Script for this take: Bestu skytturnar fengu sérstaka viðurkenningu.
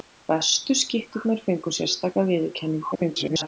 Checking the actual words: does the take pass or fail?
fail